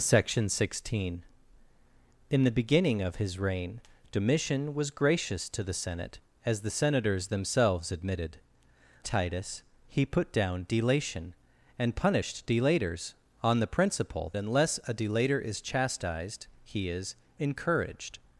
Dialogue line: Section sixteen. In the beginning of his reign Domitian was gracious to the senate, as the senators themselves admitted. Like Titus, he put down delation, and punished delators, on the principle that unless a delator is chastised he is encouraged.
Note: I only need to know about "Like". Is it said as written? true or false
false